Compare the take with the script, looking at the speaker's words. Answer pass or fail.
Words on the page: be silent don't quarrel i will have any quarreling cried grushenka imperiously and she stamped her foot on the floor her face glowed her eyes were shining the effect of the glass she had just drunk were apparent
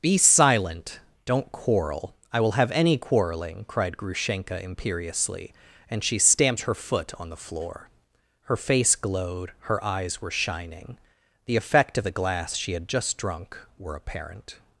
pass